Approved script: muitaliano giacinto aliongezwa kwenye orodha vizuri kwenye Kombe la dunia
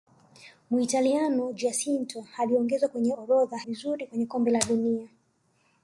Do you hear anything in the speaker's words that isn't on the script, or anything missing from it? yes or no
no